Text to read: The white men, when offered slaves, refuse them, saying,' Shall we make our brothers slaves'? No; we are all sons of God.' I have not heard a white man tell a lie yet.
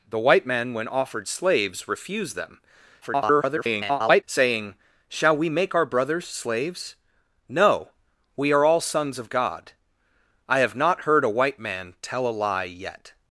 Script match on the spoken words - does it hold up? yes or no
no